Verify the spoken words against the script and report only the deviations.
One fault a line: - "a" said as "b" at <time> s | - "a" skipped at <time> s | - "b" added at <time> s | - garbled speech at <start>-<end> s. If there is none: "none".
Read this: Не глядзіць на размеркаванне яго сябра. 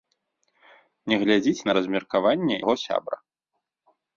none